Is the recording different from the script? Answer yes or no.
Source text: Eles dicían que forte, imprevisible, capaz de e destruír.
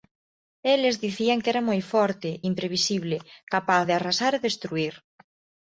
yes